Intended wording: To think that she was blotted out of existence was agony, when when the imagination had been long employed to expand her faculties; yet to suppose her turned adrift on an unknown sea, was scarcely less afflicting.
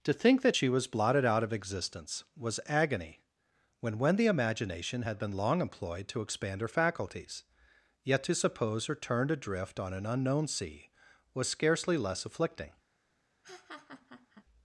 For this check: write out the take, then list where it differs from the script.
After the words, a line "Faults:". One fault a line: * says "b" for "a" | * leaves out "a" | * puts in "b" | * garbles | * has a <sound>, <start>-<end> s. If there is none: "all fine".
To think that she was blotted out of existence was agony, when when the imagination had been long employed to expand her faculties; yet to suppose her turned adrift on an unknown sea, was scarcely less afflicting.
Faults:
* has a laugh, 13.4-14.4 s